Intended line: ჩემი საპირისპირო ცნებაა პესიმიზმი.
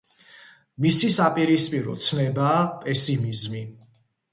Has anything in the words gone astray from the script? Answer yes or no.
yes